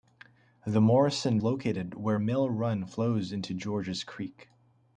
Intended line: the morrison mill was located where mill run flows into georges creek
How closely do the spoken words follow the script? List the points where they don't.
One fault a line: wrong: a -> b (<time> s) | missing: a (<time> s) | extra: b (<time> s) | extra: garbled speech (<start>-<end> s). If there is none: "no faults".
missing: mill was (1.4 s)